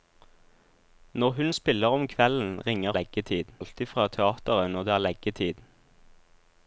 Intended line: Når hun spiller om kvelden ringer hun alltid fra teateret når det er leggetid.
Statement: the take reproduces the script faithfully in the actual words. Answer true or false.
false